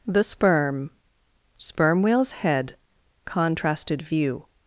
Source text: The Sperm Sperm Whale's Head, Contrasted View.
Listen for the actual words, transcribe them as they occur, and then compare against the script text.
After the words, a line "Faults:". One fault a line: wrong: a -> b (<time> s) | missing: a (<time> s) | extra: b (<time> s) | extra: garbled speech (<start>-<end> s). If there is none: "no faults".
The Sperm Sperm Whale's Head, Contrasted View.
Faults:
no faults